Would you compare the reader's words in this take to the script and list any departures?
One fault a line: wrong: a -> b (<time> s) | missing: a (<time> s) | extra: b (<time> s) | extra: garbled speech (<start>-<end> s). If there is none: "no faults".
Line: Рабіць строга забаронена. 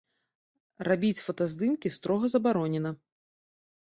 extra: фотаздымкі (1.2 s)